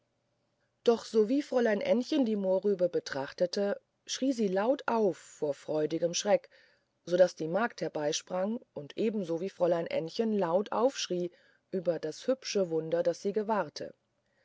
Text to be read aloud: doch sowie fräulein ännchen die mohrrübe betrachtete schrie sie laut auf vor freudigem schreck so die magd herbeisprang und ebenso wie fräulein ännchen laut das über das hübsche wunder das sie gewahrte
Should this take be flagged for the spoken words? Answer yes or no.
yes